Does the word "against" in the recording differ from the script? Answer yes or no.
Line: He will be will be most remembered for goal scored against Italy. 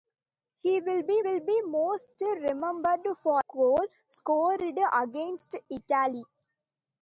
no